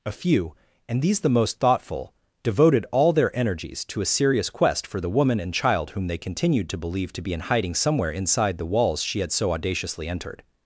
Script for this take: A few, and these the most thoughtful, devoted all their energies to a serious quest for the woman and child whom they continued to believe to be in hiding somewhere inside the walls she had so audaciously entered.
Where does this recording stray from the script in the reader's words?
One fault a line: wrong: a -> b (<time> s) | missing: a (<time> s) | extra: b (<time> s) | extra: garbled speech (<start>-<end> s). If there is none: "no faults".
no faults